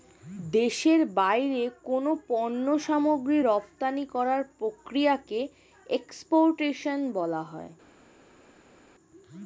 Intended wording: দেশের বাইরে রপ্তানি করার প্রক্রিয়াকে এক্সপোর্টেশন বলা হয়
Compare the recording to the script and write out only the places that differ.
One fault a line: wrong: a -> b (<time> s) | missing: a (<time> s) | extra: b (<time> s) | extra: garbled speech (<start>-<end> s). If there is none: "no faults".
extra: কোনো পণ্য সামগ্রী (1.8 s)